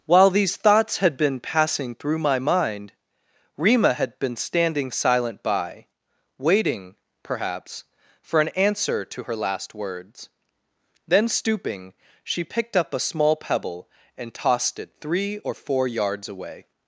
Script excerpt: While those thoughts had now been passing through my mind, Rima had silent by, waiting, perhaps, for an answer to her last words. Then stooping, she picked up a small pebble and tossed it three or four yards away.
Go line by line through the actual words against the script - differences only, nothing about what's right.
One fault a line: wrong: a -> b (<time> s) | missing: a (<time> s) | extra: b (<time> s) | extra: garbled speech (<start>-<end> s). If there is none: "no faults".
wrong: those -> these (0.3 s)
missing: now (1.1 s)
extra: been standing (4.2 s)